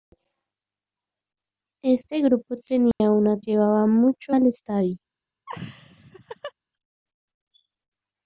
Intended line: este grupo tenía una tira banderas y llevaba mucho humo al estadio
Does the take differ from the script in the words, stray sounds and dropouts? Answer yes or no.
yes